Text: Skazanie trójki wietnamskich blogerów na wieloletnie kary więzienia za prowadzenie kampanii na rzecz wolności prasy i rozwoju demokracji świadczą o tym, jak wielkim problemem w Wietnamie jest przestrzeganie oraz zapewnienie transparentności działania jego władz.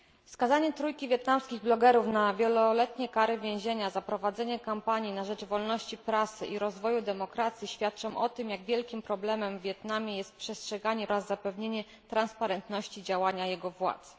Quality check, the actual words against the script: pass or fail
pass